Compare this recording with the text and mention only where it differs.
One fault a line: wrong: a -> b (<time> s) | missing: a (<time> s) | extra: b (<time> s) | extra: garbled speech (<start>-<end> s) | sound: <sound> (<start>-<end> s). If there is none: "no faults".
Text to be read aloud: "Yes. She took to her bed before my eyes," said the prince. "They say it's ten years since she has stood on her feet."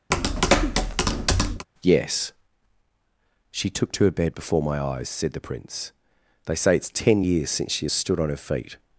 sound: tap (0.1-1.7 s)